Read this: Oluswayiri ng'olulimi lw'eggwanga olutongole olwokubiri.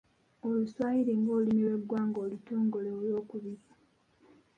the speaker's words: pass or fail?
pass